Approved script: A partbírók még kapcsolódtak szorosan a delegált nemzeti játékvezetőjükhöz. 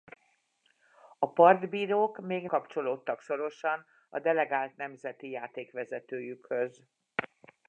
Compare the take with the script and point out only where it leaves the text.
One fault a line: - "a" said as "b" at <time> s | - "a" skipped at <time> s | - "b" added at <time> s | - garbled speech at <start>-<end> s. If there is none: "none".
none